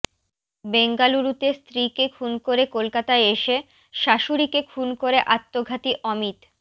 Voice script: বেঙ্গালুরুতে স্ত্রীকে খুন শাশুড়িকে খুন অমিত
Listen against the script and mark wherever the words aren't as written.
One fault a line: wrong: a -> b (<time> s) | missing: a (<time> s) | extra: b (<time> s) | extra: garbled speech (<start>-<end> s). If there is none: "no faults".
extra: করে কলকাতায় এসে (2.5 s)
extra: করে আত্মঘাতী (5.0 s)